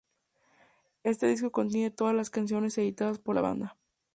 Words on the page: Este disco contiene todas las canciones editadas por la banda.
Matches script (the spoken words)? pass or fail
pass